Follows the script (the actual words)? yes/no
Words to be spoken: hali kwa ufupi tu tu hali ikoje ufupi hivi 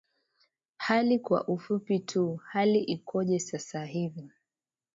no